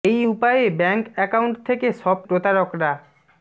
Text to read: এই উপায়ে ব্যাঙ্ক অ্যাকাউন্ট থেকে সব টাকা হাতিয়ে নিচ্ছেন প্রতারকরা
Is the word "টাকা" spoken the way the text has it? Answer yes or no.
no